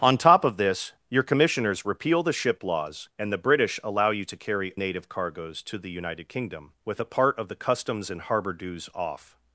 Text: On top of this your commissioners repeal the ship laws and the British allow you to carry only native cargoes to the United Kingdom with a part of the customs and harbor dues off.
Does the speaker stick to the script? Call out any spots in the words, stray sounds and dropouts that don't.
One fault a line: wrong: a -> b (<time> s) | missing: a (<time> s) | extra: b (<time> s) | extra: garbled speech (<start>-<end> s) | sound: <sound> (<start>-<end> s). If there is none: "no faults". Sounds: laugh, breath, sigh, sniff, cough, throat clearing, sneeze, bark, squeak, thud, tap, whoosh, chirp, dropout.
missing: only (4.7 s)